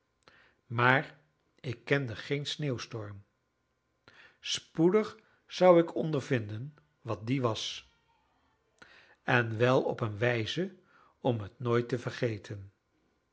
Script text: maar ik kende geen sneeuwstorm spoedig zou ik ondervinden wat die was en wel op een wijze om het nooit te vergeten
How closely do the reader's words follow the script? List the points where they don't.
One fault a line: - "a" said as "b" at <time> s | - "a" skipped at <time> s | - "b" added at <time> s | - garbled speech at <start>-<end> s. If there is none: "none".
none